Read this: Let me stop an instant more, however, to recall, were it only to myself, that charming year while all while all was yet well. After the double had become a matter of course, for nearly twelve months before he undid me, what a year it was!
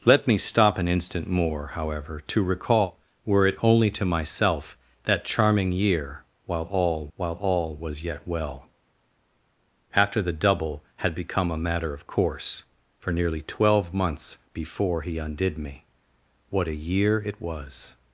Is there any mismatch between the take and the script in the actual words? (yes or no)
no